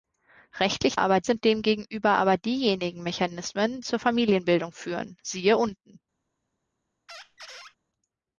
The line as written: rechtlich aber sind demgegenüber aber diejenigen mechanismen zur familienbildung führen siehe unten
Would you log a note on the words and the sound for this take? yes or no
yes